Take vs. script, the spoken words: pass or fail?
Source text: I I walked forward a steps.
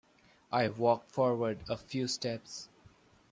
fail